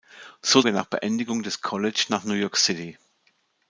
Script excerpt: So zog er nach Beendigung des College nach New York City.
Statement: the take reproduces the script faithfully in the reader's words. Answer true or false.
false